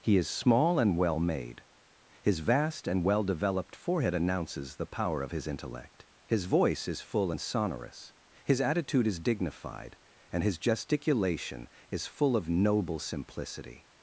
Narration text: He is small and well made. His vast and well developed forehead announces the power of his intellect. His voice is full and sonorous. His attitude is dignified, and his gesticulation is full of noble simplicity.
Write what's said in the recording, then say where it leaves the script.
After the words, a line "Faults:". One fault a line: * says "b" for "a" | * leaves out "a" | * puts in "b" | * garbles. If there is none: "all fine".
He is small and well made. His vast and well developed forehead announces the power of his intellect. His voice is full and sonorous. His attitude is dignified, and his gesticulation is full of noble simplicity.
Faults:
all fine